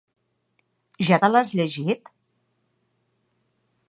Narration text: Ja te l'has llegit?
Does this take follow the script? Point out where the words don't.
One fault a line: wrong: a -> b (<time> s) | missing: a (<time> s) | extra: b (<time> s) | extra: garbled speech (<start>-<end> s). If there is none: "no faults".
no faults